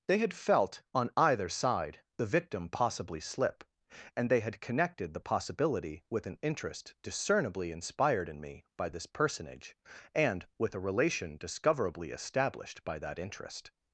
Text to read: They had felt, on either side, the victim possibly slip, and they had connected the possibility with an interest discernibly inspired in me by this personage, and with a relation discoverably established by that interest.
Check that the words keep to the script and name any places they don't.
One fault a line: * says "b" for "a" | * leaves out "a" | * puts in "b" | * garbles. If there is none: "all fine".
all fine